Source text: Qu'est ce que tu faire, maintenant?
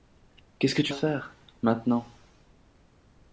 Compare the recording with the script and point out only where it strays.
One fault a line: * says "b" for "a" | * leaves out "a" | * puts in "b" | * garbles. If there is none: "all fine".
all fine